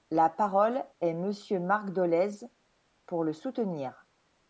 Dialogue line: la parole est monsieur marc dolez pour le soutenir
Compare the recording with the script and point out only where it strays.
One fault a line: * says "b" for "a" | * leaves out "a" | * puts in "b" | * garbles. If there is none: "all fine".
all fine